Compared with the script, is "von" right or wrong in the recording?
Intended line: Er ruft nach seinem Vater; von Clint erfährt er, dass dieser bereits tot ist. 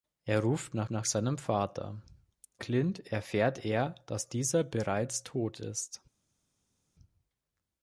wrong